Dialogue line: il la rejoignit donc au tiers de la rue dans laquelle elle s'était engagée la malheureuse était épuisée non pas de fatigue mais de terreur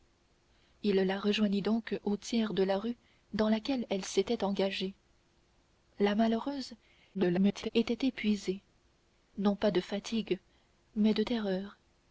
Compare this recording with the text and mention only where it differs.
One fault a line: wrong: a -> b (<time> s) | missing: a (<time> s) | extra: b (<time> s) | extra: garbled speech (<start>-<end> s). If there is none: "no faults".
extra: garbled speech (7.1-7.7 s)